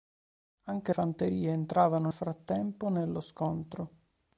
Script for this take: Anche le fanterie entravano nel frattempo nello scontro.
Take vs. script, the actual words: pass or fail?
fail